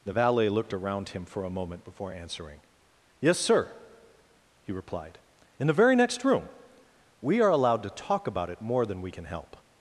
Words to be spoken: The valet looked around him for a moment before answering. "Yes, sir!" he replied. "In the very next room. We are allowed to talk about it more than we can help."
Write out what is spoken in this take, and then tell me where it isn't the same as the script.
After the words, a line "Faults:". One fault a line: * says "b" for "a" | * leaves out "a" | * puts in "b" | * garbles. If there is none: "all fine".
The valet looked around him for a moment before answering. "Yes, sir!" he replied. "In the very next room. We are allowed to talk about it more than we can help."
Faults:
all fine